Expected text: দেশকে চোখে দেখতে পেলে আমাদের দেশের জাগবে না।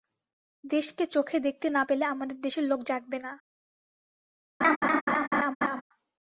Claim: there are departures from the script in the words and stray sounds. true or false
true